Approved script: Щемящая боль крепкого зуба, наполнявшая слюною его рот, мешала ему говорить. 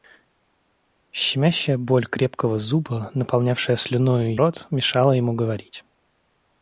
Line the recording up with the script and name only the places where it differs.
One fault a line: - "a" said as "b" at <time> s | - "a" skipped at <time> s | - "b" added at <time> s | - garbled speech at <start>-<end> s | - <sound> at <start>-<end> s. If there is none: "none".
- "его" skipped at 4.4 s